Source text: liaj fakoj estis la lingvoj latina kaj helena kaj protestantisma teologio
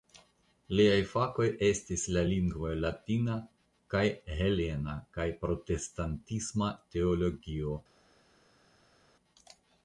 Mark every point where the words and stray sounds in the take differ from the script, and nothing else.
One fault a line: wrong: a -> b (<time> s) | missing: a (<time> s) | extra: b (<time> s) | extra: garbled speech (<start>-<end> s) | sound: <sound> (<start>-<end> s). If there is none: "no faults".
no faults